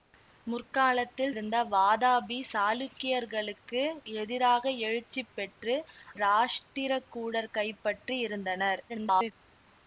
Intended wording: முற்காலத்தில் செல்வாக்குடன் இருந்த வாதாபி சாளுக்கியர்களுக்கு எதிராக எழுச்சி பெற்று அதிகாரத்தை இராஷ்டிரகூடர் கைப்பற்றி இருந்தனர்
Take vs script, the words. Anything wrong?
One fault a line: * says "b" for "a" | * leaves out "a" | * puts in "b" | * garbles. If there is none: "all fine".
* leaves out "செல்வாக்குடன்"
* leaves out "அதிகாரத்தை"
* garbles